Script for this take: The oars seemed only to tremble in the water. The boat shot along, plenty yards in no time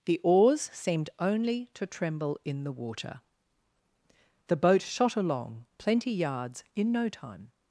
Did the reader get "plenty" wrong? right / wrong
right